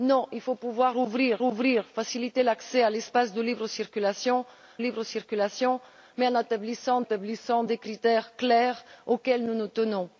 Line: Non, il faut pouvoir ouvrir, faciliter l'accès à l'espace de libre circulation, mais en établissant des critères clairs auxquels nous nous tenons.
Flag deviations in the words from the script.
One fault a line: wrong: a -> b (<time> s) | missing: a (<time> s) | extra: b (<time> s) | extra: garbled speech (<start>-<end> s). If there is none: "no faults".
extra: ouvrir (1.4 s)
extra: libre circulation (4.8 s)
extra: établissant (7.0 s)